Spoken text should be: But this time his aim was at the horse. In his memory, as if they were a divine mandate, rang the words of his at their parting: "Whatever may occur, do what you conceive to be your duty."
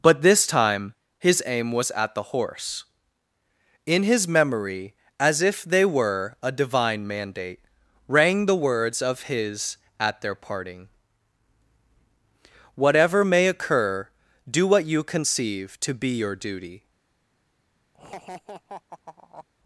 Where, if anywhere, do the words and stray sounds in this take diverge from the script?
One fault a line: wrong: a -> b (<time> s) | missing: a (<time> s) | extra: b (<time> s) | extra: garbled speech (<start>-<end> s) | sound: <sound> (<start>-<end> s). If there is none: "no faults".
sound: laugh (17.9-19.5 s)